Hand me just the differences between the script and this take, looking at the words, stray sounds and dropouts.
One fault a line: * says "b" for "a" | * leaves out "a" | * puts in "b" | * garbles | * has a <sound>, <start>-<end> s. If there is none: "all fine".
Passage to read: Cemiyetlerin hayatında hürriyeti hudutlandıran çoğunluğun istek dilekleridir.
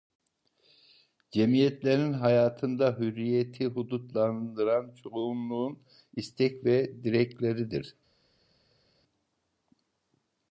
* puts in "ve"